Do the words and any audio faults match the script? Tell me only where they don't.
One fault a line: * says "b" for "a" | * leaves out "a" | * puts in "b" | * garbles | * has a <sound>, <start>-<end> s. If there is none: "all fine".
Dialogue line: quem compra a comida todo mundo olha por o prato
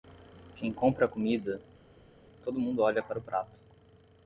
* says "para" for "por"